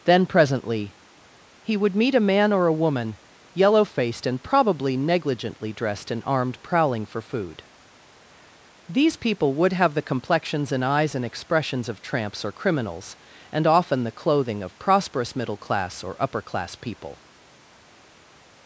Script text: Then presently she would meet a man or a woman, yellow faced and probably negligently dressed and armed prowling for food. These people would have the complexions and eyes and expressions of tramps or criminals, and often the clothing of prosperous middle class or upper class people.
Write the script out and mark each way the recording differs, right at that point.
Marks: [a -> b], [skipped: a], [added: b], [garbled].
Then presently [she -> he] would meet a man or a woman, yellow faced and probably negligently dressed and armed prowling for food. These people would have the complexions and eyes and expressions of tramps or criminals, and often the clothing of prosperous middle class or upper class people.